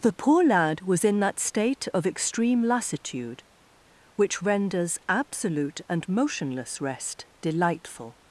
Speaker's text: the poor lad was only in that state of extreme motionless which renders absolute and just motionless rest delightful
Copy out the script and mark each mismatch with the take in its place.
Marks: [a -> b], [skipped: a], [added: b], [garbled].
the poor lad was [skipped: only] in that state of extreme [motionless -> lassitude] which renders absolute and [skipped: just] motionless rest delightful